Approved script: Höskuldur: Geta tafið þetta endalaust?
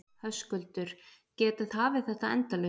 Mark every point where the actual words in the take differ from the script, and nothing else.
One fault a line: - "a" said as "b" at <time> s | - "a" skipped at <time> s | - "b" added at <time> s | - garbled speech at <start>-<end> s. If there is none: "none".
none